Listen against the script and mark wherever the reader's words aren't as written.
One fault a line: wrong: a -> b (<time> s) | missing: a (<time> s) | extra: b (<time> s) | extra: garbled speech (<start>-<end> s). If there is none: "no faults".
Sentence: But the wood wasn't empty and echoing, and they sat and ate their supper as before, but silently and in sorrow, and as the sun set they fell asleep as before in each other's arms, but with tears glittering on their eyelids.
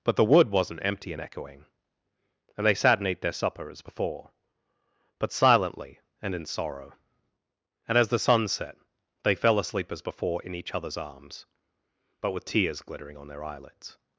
no faults